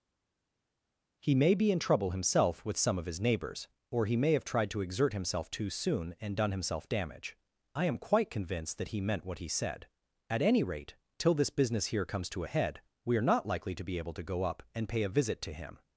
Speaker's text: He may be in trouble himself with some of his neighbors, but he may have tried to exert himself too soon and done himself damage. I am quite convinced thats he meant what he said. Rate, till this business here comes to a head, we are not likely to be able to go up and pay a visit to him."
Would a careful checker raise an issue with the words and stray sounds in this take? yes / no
yes